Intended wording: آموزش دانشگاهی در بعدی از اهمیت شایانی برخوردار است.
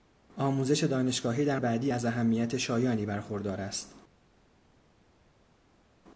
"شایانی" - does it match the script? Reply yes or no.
yes